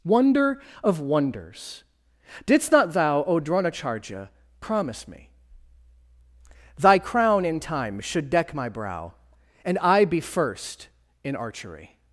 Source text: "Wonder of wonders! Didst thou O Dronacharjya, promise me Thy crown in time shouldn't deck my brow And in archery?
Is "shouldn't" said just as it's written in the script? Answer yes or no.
no